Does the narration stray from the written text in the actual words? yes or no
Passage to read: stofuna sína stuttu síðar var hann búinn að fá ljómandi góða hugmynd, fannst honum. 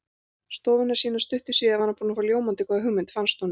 no